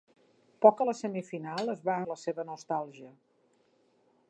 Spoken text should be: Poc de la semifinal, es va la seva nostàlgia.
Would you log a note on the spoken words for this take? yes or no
no